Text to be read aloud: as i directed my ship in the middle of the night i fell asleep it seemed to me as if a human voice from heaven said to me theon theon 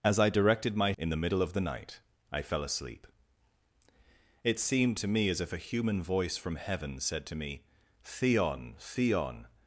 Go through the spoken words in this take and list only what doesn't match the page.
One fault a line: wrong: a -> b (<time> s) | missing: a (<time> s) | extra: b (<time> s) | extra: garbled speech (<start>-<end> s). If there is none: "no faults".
missing: ship (0.9 s)